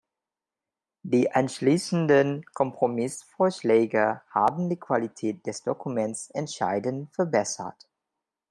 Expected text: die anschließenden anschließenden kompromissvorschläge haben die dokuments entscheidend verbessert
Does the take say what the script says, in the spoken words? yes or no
no